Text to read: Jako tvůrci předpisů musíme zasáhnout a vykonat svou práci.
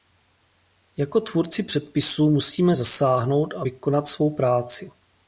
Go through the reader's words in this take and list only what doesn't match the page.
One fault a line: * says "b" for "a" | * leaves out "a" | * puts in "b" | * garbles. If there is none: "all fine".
all fine